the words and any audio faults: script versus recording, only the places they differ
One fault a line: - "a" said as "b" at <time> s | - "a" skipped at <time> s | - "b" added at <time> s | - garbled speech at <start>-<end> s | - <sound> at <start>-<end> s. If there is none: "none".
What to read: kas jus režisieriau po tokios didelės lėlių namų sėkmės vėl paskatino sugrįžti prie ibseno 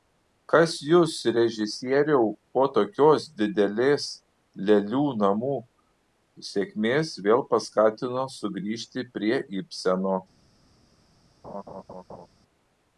- laugh at 11.4-12.3 s